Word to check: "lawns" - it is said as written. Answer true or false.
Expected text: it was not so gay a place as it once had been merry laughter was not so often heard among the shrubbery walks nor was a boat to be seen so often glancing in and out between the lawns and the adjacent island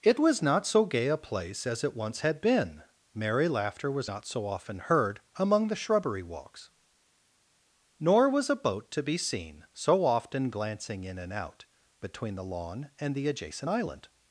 false